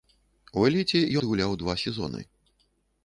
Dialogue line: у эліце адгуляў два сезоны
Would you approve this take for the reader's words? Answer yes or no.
yes